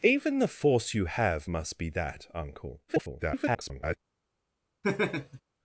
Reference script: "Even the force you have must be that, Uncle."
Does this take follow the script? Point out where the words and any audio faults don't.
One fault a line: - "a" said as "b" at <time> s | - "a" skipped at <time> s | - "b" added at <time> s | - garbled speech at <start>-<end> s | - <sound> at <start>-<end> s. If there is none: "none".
- garbled speech at 2.9-4.0 s
- laugh at 4.8-5.4 s